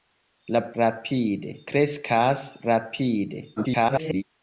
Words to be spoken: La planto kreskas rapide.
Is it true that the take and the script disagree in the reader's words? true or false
true